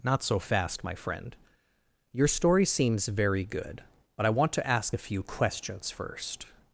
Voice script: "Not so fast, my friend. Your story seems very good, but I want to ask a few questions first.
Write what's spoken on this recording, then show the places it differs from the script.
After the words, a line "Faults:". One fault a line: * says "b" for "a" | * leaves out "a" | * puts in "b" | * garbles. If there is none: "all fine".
"Not so fast, my friend. Your story seems very good, but I want to ask a few questions first.
Faults:
all fine